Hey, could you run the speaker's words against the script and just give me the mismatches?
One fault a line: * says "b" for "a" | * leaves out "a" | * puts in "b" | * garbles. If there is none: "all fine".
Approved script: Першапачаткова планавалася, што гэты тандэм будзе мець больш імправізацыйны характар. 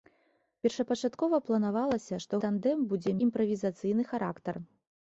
* leaves out "гэты"
* leaves out "мець больш"